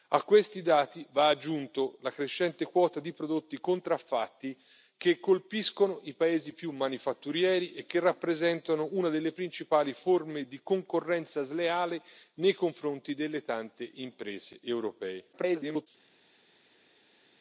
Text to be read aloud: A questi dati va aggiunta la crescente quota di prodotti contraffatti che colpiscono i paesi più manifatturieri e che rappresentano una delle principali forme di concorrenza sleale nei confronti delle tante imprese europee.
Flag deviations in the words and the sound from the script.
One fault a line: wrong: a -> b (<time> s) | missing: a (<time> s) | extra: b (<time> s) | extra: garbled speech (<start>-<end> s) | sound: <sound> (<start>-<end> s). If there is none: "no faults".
extra: garbled speech (15.3-15.9 s)